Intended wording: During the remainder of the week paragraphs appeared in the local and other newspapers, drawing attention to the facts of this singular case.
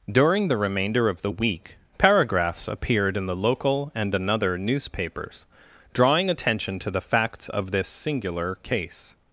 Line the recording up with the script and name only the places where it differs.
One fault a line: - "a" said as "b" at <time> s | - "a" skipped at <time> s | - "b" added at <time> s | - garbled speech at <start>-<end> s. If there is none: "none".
- "other" said as "another" at 4.1 s